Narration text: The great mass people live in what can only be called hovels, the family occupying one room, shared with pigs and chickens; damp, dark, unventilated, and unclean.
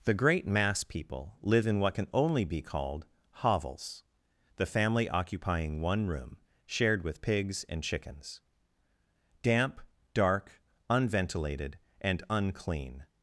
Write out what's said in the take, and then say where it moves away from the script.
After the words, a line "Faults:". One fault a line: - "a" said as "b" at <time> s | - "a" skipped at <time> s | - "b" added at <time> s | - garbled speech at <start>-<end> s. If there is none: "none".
The great mass people live in what can only be called hovels, the family occupying one room, shared with pigs and chickens; damp, dark, unventilated, and unclean.
Faults:
none